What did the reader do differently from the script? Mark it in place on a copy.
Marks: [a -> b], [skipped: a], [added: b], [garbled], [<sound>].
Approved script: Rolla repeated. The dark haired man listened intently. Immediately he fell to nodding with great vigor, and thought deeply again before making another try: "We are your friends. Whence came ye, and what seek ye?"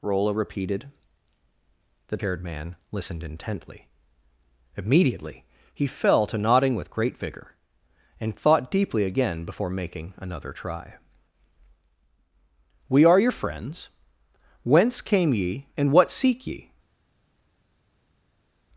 Rolla repeated. The [skipped: dark] haired man listened intently. Immediately he fell to nodding with great vigor, and thought deeply again before making another try: "We are your friends. Whence came ye, and what seek ye?"